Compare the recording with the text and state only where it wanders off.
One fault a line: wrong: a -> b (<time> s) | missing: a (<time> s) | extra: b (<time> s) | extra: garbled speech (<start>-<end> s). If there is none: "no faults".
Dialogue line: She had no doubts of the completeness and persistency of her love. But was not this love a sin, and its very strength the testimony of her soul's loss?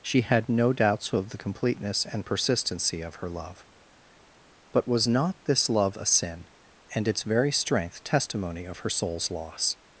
missing: the (8.0 s)